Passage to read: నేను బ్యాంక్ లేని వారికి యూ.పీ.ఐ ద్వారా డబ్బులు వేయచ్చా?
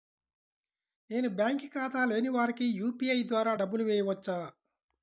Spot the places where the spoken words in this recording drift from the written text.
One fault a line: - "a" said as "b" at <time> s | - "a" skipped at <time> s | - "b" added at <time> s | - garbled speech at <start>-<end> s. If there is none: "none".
- "ఖాతా" added at 1.7 s